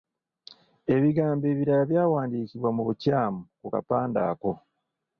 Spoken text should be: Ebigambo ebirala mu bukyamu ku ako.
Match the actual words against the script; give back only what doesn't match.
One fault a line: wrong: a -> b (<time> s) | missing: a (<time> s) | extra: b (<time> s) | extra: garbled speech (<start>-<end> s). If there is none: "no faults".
extra: byawandiikibwa (1.9 s)
extra: kapande (3.7 s)